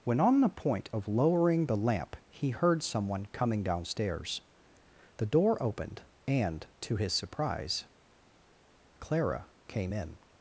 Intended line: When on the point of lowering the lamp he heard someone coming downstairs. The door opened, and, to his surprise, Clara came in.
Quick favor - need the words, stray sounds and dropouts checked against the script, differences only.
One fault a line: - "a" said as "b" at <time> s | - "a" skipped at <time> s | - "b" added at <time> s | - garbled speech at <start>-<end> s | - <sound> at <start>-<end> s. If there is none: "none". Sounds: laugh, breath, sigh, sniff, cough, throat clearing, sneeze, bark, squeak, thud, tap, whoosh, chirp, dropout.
none